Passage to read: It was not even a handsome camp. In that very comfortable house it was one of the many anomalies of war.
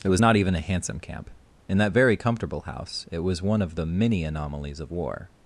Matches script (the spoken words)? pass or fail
pass